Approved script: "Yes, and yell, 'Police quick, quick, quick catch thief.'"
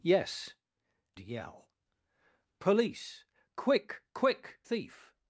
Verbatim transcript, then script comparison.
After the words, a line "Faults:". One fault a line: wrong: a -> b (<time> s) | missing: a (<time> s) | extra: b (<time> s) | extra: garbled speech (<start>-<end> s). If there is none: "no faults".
"Yes, yell, 'Police quick, quick, thief.'"
Faults:
missing: and (0.6 s)
missing: quick catch (4.6 s)